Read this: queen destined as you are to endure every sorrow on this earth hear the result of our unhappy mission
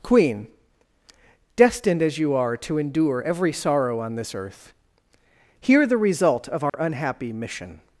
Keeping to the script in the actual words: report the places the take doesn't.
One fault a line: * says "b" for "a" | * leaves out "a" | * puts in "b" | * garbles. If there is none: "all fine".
all fine